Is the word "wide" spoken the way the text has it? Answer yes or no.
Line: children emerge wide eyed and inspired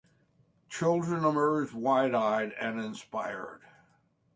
yes